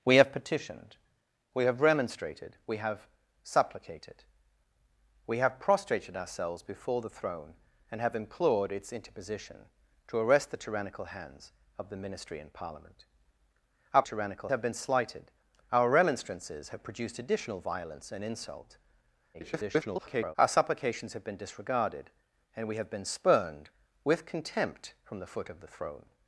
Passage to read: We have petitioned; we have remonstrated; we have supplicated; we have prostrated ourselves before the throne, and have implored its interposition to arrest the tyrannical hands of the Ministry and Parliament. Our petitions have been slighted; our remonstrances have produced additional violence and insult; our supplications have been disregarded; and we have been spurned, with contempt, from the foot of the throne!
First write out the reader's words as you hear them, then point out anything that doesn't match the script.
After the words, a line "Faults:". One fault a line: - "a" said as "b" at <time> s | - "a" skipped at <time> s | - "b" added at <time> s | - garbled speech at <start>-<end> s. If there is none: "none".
We have petitioned; we have remonstrated; we have supplicated; we have prostrated ourselves before the throne, and have implored its interposition to arrest the tyrannical hands of the Ministry and Parliament. Our tyrannical have been slighted; our remonstrances have produced additional violence and insult; [garbled] our supplications have been disregarded; and we have been spurned, with contempt, from the foot of the throne!
Faults:
- "petitions" said as "tyrannical" at 14.0 s
- garbled speech at 19.3-20.4 s